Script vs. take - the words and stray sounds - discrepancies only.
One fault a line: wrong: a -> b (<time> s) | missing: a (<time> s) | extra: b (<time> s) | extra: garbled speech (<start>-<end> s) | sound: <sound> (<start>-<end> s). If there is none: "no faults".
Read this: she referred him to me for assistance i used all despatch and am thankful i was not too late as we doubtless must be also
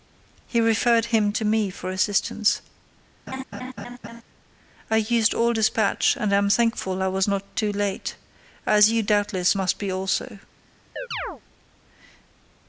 wrong: she -> he (0.5 s)
sound: laugh (3.3-4.2 s)
wrong: we -> you (8.9 s)
sound: chirp (11.0-11.4 s)